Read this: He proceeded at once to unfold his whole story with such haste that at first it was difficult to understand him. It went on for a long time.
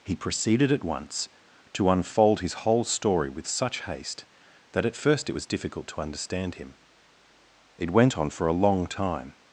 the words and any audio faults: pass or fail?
pass